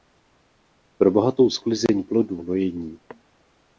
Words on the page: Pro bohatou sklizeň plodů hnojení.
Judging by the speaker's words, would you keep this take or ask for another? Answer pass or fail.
pass